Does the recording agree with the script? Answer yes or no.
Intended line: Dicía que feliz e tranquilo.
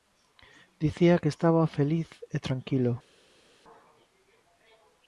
no